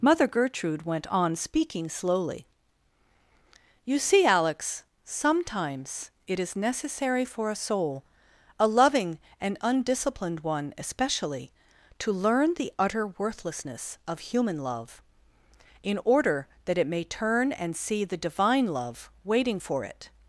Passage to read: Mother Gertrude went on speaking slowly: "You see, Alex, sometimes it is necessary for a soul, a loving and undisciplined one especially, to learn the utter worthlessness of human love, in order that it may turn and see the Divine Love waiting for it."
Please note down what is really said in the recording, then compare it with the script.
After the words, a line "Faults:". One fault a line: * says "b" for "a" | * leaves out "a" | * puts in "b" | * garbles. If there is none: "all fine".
Mother Gertrude went on speaking slowly: "You see, Alex, sometimes it is necessary for a soul, a loving and undisciplined one especially, to learn the utter worthlessness of human love, in order that it may turn and see the Divine Love waiting for it."
Faults:
all fine